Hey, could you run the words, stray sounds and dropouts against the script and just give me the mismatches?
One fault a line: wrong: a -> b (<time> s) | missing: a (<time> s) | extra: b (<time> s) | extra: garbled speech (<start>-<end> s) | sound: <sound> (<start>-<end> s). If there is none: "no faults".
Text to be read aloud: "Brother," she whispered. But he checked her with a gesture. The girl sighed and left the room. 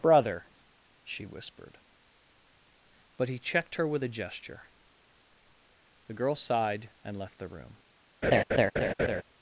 sound: laugh (8.2-9.2 s)